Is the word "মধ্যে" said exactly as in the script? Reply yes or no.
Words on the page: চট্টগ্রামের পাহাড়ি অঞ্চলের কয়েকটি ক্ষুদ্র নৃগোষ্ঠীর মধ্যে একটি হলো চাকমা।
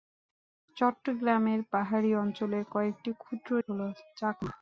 no